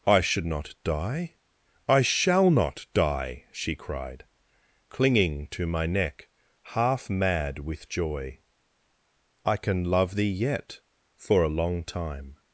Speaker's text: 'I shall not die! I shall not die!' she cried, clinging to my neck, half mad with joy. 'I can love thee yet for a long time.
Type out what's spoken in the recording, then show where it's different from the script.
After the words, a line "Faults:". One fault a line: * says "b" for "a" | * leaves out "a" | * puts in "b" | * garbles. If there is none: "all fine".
'I should not die! I shall not die!' she cried, clinging to my neck, half mad with joy. 'I can love thee yet for a long time.
Faults:
* says "should" for "shall"